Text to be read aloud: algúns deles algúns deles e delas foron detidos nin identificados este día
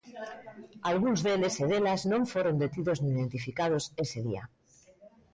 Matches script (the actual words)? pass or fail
fail